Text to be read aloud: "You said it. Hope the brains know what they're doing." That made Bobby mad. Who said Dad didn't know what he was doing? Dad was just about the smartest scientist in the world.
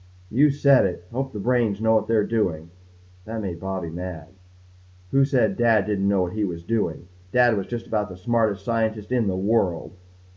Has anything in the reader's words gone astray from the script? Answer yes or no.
no